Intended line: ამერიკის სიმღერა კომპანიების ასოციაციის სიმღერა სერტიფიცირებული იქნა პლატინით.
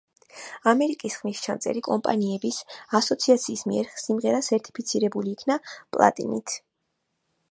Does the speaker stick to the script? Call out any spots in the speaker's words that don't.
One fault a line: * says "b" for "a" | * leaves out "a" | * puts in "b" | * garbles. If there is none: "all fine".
* says "ხმისჩამწერი" for "სიმღერა"
* puts in "მიერ"